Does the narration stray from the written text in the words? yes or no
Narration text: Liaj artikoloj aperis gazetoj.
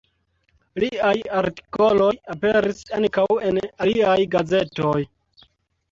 yes